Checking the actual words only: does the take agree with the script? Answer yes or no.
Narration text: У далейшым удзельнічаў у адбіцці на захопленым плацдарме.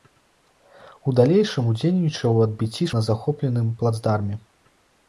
yes